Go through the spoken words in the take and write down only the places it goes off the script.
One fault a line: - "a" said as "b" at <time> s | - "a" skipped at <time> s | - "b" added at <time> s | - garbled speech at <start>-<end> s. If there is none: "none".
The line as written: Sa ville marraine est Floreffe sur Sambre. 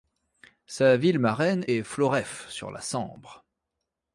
- "la" added at 2.7 s